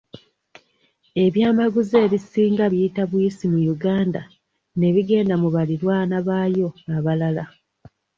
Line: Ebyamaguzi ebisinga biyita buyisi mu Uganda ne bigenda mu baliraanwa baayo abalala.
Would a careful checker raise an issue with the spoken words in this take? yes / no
no